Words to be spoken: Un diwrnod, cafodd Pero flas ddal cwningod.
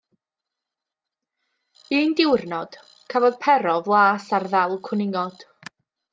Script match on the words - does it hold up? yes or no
no